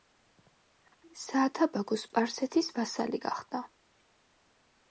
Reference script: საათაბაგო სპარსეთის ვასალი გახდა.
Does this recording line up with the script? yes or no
yes